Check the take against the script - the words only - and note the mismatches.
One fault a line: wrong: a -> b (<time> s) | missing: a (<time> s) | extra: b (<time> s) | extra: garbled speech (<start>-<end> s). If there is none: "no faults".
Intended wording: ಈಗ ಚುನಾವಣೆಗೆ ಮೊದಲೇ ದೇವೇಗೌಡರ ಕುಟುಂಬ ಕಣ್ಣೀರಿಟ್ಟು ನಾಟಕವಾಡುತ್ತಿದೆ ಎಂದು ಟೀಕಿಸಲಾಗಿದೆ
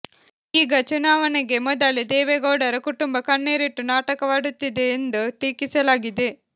no faults